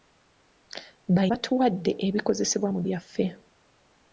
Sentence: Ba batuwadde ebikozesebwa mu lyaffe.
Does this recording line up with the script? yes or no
yes